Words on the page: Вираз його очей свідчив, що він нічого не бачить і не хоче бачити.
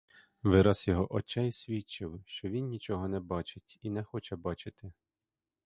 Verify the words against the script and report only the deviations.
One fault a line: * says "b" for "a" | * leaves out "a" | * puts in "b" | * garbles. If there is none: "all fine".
all fine